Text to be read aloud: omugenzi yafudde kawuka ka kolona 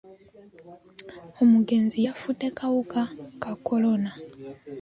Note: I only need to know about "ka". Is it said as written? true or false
true